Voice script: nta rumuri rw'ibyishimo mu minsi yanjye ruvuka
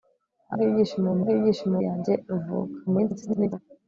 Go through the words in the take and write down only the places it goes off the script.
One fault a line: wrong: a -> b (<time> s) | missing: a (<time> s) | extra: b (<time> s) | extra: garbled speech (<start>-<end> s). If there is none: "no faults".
missing: rumuri (0.6 s)
wrong: minsi -> rw'ibyishimo (1.2 s)
extra: garbled speech (2.9-3.6 s)